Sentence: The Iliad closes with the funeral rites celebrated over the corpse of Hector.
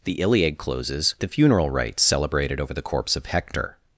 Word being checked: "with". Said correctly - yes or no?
no